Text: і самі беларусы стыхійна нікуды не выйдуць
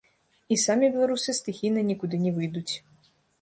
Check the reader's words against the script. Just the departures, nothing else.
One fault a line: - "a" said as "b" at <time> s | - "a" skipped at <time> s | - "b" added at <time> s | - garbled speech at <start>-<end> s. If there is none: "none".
none